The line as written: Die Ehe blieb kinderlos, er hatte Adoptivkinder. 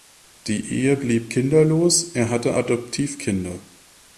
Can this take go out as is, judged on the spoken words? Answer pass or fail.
pass